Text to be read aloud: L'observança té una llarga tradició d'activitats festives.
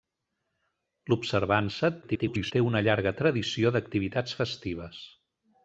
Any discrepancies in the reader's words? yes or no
yes